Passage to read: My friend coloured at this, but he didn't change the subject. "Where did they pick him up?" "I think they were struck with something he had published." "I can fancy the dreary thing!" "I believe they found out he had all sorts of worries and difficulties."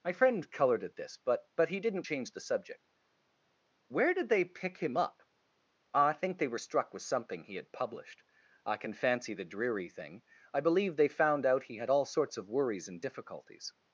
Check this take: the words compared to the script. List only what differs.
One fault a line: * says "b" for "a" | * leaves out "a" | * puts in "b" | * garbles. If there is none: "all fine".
* puts in "but"